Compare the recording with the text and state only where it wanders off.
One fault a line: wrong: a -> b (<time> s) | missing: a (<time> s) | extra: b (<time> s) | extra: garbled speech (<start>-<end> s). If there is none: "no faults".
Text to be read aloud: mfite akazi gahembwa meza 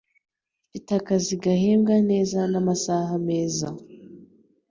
extra: neza namasaha (2.1 s)